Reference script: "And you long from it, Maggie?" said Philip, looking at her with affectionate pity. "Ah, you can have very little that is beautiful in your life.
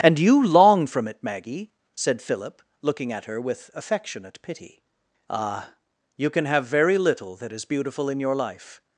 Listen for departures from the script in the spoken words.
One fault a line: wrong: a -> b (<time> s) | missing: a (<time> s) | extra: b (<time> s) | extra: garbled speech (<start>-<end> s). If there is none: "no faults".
no faults